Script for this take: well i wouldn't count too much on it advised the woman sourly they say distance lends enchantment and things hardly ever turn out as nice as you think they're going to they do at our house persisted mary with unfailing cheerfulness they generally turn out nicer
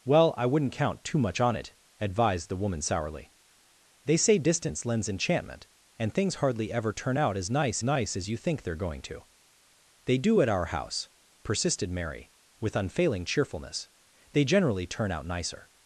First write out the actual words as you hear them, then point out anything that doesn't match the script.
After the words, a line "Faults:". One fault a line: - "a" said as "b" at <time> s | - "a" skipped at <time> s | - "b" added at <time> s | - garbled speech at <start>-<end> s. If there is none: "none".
well i wouldn't count too much on it advised the woman sourly they say distance lends enchantment and things hardly ever turn out as nice nice as you think they're going to they do at our house persisted mary with unfailing cheerfulness they generally turn out nicer
Faults:
- "nice" added at 7.8 s